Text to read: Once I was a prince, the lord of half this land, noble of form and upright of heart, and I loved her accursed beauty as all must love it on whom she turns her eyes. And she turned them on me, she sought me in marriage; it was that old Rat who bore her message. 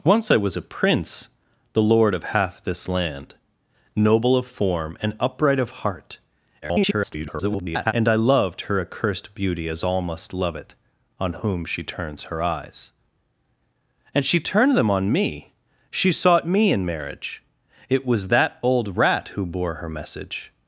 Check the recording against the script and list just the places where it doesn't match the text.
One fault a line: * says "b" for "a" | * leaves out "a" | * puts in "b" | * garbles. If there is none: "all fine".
* garbles